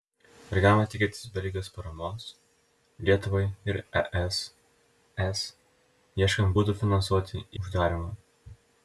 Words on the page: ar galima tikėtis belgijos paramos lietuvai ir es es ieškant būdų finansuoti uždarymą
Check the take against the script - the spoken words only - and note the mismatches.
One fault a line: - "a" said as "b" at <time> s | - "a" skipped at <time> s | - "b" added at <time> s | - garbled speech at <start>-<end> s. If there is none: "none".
none